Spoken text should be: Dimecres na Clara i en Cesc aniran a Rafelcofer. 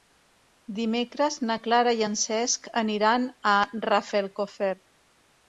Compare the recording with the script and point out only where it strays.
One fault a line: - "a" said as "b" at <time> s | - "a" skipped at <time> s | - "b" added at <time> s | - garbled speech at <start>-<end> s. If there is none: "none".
none